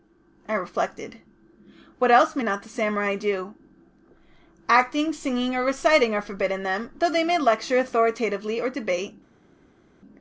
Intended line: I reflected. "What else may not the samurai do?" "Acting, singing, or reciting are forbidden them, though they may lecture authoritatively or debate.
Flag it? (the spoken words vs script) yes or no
no